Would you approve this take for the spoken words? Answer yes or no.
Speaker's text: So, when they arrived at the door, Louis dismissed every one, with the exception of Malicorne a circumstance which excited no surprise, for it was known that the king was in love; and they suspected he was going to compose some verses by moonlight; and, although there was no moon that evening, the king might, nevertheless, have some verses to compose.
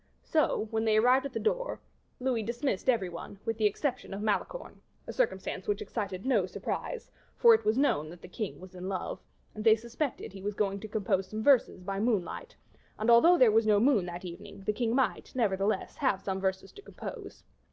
yes